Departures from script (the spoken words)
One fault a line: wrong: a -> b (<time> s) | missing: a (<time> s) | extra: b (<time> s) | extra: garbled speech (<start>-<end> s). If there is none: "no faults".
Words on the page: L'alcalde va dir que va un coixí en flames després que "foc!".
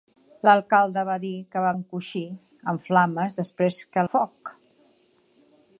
no faults